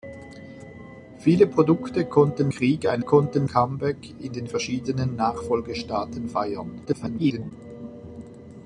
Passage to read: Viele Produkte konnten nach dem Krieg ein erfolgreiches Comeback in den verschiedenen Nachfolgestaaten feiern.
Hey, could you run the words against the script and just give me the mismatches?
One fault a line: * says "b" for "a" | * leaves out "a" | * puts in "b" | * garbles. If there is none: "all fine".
* leaves out "nach dem"
* says "konnten" for "erfolgreiches"
* garbles